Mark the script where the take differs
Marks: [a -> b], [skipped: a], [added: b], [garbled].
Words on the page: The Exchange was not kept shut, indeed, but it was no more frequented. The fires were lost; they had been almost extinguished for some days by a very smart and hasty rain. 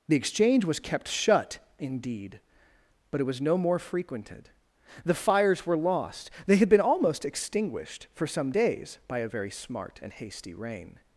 The Exchange was [skipped: not] kept shut, indeed, but it was no more frequented. The fires were lost; they had been almost extinguished for some days by a very smart and hasty rain.